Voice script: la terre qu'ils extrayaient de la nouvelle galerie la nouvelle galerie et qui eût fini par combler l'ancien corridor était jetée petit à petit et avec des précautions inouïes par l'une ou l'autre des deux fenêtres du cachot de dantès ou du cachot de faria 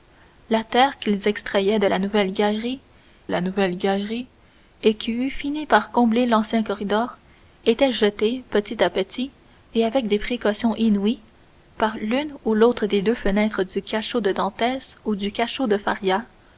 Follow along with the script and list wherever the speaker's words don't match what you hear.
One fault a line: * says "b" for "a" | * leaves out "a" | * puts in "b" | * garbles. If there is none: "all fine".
all fine